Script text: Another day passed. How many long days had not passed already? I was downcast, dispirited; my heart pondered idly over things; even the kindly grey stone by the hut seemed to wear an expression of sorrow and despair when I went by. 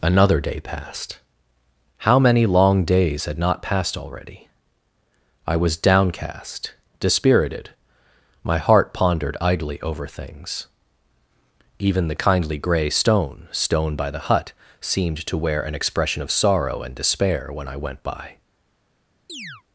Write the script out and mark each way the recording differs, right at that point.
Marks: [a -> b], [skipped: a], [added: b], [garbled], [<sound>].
Another day passed. How many long days had not passed already? I was downcast, dispirited; my heart pondered idly over things; even the kindly grey stone [added: stone] by the hut seemed to wear an expression of sorrow and despair when I went by. [chirp]